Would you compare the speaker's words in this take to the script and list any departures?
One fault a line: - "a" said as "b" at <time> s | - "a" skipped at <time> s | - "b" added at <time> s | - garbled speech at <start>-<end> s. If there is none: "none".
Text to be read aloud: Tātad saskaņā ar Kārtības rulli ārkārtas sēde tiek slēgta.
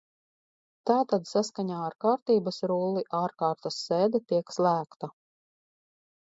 none